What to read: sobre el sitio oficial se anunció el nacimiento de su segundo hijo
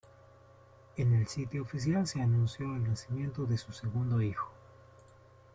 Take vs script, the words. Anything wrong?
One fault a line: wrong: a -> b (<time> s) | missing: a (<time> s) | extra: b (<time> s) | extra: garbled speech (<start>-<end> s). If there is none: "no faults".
wrong: sobre -> en (1.0 s)